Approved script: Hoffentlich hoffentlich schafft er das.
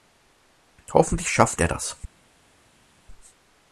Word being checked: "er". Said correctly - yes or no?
yes